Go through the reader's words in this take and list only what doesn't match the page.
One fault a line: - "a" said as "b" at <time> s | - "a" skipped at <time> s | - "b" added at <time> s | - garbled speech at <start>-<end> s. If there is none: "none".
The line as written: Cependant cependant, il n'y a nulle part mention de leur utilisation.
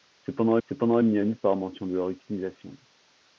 none